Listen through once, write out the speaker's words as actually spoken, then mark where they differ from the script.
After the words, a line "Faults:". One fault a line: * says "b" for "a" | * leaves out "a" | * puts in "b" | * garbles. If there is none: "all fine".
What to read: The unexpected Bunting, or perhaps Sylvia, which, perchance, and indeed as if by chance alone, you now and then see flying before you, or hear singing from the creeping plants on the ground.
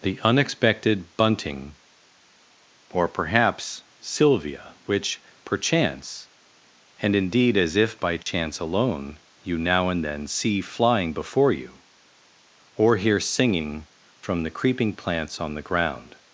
The unexpected Bunting, or perhaps Sylvia, which, perchance, and indeed as if by chance alone, you now and then see flying before you, or hear singing from the creeping plants on the ground.
Faults:
all fine